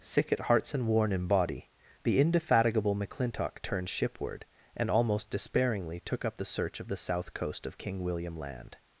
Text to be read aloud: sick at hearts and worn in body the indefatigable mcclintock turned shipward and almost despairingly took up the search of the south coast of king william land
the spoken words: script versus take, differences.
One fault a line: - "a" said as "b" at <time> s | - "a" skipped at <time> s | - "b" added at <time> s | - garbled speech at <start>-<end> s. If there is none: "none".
none